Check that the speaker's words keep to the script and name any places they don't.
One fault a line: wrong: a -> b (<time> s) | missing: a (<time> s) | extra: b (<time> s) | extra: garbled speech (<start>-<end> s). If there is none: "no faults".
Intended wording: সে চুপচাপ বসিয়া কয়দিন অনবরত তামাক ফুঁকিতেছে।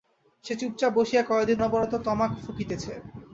no faults